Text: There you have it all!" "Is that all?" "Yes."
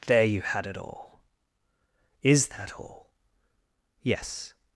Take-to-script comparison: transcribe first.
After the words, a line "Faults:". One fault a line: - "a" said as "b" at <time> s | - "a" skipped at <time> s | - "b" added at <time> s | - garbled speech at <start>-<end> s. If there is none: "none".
There you had it all!" "Is that all?" "Yes."
Faults:
- "have" said as "had" at 0.4 s